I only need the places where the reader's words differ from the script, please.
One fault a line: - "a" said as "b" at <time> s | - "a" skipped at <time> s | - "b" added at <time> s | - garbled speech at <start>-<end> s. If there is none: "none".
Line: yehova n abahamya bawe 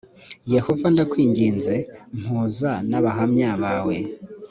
- "ndakwinginze mpuza" added at 0.9 s